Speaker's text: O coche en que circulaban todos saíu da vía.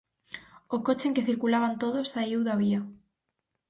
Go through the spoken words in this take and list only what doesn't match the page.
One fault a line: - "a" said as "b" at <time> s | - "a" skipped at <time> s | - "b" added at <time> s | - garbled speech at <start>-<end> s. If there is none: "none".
none